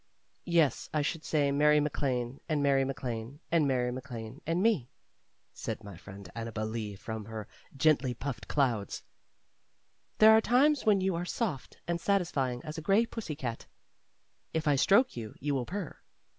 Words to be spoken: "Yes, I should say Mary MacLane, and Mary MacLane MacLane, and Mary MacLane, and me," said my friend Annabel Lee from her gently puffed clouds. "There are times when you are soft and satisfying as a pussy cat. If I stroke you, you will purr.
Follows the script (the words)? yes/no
no